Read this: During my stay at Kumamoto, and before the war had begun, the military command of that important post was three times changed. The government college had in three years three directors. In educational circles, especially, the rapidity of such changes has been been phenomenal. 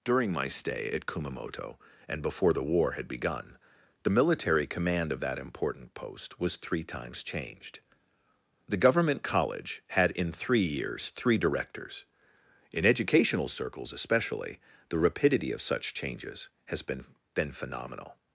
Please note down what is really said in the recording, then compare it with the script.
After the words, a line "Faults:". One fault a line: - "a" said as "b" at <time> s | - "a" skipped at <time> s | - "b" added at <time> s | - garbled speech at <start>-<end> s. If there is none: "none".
During my stay at Kumamoto, and before the war had begun, the military command of that important post was three times changed. The government college had in three years three directors. In educational circles, especially, the rapidity of such changes has been been phenomenal.
Faults:
none